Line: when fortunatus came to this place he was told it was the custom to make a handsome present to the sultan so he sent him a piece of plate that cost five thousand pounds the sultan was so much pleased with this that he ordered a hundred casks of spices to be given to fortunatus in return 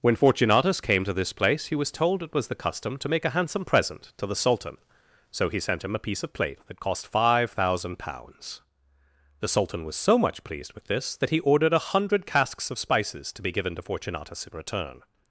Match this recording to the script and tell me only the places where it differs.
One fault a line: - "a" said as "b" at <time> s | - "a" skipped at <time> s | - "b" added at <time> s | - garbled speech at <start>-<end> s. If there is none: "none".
none